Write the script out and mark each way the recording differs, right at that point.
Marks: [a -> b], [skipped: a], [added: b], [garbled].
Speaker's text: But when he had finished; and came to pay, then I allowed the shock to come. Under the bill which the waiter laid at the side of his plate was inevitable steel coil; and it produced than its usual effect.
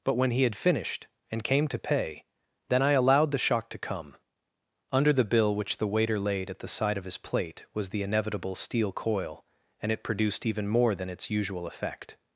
But when he had finished; and came to pay, then I allowed the shock to come. Under the bill which the waiter laid at the side of his plate was [added: the] inevitable steel coil; and it produced [added: even more] than its usual effect.